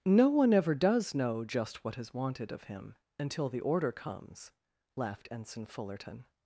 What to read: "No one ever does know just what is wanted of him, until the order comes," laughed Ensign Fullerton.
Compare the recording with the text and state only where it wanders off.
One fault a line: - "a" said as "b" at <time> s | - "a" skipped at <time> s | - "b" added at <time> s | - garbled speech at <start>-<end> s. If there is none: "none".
none